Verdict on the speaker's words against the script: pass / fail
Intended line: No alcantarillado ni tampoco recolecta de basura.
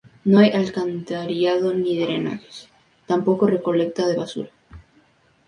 fail